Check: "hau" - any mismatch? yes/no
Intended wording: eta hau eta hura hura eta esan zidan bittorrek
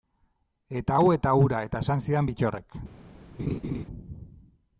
no